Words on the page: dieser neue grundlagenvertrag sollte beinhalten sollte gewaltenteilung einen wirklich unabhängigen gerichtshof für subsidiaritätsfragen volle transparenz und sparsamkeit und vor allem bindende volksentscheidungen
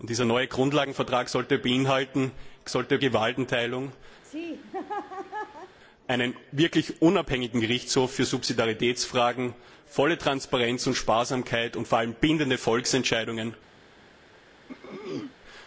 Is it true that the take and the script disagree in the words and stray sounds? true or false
true